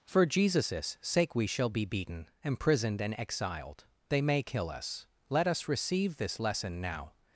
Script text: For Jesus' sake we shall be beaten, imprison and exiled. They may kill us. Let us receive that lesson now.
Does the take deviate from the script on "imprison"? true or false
true